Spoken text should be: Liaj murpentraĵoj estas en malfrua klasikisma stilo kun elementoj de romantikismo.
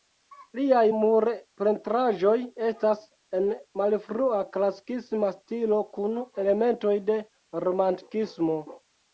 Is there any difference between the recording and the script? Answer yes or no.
no